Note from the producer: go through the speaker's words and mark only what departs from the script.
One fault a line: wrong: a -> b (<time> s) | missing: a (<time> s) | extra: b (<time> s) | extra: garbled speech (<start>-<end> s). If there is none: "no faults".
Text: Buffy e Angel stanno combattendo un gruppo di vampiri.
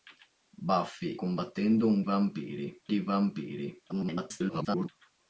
missing: e Angel stanno (1.1 s)
wrong: gruppo -> vampiri (2.0 s)
extra: garbled speech (3.9-4.9 s)